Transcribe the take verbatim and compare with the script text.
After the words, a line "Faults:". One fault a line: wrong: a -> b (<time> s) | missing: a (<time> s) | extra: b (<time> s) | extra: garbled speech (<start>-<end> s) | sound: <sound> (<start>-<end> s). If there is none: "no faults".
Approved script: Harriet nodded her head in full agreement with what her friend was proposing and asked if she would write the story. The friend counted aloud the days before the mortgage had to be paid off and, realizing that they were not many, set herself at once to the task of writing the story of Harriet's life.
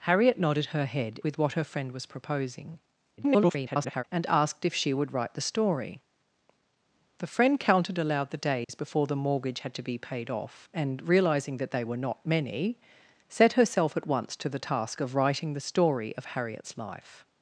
Harriet nodded her head with what her friend was proposing [garbled] and asked if she would write the story. The friend counted aloud the days before the mortgage had to be paid off and, realizing that they were not many, set herself at once to the task of writing the story of Harriet's life.
Faults:
missing: in full agreement (1.2 s)
extra: garbled speech (3.2-4.0 s)
sound: dropout (8.6-8.7 s)